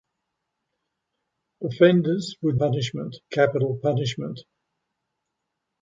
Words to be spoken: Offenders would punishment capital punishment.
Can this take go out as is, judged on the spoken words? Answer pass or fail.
pass